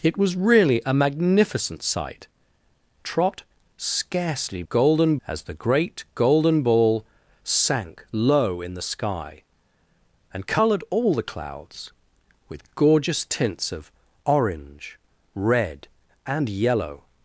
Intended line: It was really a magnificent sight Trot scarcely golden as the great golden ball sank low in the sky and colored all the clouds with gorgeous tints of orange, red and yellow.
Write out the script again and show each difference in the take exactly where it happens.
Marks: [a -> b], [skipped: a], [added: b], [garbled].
It was really a magnificent sight Trot scarcely golden as the great golden ball sank low in the sky and colored all the clouds with gorgeous tints of orange, red and yellow.